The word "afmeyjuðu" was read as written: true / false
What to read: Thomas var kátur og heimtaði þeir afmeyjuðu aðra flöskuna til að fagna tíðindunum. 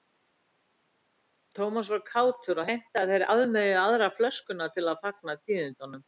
true